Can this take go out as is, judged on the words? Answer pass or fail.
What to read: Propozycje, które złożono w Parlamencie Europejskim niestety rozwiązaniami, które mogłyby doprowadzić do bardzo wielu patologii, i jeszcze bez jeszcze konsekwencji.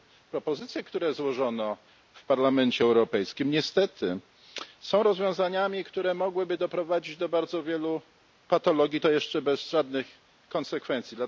fail